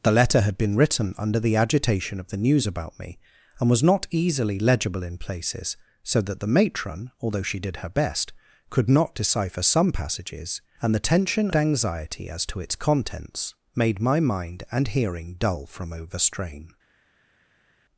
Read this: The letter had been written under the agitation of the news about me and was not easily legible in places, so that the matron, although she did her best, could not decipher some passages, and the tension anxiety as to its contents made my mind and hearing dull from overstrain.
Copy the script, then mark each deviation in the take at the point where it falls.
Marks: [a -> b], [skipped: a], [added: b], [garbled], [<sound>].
The letter had been written under the agitation of the news about me and was not easily legible in places, so that the matron, although she did her best, could not decipher some passages, and the tension anxiety as to its contents made my mind and hearing dull from overstrain.